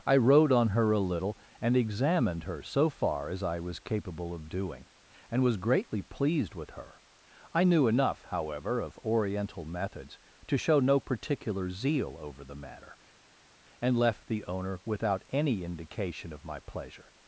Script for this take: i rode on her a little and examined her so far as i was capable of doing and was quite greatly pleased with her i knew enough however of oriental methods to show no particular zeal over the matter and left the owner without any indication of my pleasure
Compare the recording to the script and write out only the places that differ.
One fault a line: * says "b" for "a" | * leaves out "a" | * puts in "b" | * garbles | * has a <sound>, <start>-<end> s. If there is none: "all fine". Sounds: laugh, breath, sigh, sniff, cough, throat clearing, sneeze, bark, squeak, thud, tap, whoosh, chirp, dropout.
* leaves out "quite"